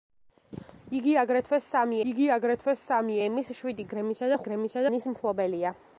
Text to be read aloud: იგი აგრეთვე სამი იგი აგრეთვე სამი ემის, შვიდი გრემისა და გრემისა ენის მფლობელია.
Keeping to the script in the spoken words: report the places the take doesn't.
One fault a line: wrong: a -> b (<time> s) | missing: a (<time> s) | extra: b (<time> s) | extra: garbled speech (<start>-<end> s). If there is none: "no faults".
no faults